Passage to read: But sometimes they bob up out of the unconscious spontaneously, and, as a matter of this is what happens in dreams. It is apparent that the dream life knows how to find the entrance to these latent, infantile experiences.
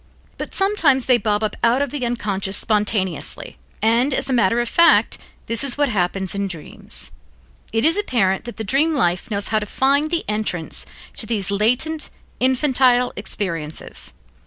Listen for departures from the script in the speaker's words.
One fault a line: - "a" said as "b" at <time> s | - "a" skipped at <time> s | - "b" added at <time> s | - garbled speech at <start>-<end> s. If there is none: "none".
- "fact" added at 4.7 s